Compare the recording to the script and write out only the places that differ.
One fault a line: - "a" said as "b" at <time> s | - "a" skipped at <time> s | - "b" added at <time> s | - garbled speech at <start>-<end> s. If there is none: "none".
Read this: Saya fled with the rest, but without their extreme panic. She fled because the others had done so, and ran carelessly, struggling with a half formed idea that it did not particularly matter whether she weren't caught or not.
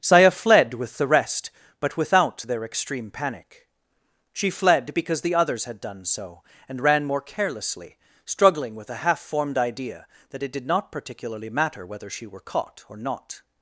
- "more" added at 7.0 s
- "weren't" said as "were" at 12.3 s